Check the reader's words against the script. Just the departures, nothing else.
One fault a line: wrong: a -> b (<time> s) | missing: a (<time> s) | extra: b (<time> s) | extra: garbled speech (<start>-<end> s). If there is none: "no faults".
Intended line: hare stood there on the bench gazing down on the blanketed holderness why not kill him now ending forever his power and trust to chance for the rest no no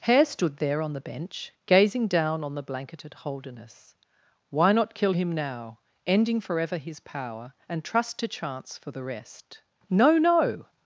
no faults